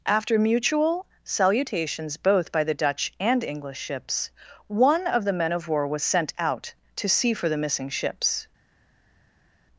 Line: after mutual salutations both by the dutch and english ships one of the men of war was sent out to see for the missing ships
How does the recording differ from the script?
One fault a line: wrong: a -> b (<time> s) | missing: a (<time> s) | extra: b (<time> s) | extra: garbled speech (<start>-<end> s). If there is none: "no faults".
no faults